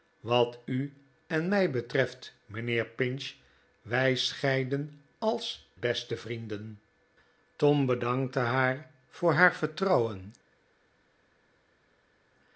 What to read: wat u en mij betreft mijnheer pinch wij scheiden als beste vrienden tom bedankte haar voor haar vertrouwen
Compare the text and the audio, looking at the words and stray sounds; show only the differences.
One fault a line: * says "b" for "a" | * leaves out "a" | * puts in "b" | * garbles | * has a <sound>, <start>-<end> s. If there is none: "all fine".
all fine